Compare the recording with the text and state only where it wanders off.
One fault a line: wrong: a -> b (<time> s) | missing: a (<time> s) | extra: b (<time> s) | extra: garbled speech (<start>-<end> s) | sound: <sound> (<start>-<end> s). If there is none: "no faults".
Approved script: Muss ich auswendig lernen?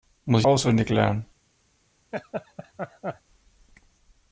sound: laugh (2.1-3.2 s)